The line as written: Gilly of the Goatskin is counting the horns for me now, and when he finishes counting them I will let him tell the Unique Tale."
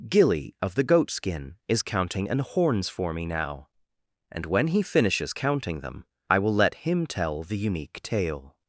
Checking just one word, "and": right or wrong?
right